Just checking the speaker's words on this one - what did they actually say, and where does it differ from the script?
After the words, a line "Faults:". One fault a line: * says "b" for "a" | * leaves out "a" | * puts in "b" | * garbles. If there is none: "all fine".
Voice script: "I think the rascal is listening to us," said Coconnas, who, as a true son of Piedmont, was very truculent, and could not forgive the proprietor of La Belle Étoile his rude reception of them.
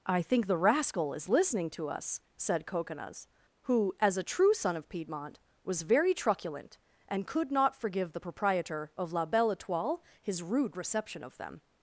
"I think the rascal is listening to us," said Coconnas, who, as a true son of Piedmont, was very truculent, and could not forgive the proprietor of La Belle Étoile his rude reception of them.
Faults:
all fine